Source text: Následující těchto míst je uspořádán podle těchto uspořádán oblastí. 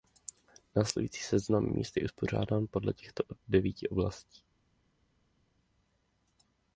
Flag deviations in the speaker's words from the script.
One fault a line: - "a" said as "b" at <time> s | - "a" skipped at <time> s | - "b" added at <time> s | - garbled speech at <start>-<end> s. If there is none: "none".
- "těchto" said as "seznam" at 1.2 s
- "uspořádán" said as "devíti" at 3.5 s